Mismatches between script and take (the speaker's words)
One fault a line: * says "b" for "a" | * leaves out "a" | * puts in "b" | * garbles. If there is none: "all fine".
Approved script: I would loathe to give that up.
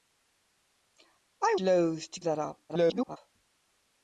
* leaves out "would"
* leaves out "give"
* garbles